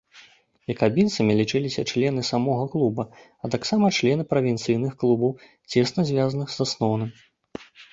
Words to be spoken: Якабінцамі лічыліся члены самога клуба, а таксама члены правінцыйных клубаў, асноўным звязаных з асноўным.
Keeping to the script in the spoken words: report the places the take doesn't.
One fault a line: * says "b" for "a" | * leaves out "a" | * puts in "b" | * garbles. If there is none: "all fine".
* says "цесна" for "асноўным"